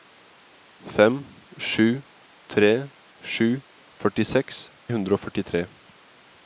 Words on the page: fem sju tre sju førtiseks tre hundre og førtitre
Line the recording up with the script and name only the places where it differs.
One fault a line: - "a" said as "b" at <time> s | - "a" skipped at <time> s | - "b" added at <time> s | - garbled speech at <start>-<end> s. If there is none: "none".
- "tre" skipped at 4.6 s